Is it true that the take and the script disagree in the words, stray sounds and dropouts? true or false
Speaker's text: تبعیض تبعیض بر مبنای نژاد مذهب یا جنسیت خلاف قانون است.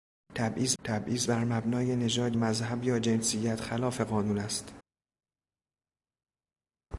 false